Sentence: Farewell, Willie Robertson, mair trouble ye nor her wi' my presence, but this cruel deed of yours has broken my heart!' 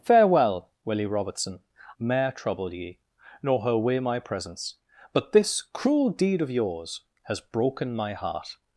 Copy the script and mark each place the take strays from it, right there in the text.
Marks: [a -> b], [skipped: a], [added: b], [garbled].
Farewell, Willie Robertson, mair trouble ye nor her wi' my presence, but this cruel deed of yours has broken my heart!'